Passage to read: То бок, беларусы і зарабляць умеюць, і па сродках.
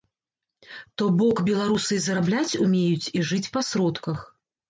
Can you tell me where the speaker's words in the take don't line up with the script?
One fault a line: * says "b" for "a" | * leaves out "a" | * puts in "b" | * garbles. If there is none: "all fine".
* puts in "жыць"